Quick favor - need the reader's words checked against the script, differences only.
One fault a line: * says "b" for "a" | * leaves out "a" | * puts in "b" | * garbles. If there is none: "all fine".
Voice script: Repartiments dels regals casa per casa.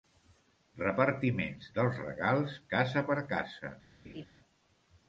all fine